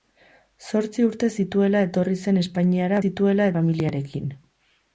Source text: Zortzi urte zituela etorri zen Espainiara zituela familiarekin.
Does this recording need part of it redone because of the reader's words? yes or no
no